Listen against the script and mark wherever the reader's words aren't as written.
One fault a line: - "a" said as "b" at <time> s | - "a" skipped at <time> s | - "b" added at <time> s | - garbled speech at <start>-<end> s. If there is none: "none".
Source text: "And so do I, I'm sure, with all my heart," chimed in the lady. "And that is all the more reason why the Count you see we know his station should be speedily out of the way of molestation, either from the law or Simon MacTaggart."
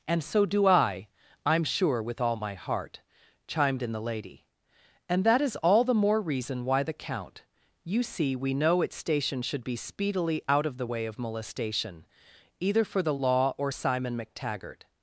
- "his" said as "its" at 8.8 s
- "from" said as "for" at 12.8 s